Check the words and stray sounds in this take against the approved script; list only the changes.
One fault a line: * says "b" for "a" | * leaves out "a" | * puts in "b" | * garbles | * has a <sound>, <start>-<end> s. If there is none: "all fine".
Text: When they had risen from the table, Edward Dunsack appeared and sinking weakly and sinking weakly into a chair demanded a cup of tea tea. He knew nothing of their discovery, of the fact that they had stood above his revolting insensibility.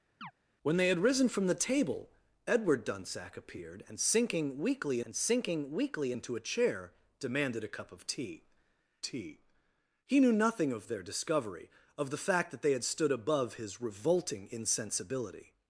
* has a chirp, 0.2-0.3 s